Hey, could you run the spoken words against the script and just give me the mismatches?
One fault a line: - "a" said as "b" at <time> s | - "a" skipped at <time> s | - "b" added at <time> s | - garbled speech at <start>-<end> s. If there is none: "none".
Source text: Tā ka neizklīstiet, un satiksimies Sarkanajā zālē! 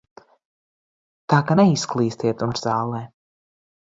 - "satiksimies Sarkanajā" skipped at 2.5 s